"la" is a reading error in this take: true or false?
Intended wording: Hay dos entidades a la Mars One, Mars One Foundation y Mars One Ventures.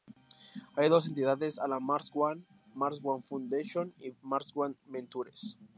false